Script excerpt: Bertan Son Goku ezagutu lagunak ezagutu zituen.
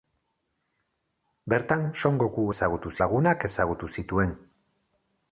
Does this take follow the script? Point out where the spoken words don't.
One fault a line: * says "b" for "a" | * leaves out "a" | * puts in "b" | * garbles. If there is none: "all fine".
all fine